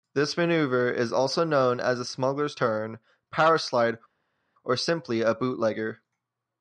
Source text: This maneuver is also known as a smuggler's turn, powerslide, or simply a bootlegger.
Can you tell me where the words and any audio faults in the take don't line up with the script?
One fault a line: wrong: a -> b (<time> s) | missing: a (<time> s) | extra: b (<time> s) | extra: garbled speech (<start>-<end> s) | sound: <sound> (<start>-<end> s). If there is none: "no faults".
no faults